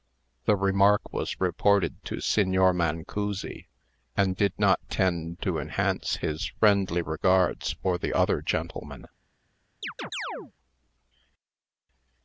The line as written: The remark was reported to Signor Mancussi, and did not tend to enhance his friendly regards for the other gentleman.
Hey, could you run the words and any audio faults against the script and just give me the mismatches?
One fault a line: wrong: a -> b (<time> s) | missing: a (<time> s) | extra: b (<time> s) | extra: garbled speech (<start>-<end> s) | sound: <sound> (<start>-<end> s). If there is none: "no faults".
sound: chirp (9.8-10.5 s)